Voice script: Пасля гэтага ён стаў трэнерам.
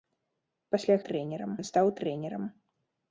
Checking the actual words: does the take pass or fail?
fail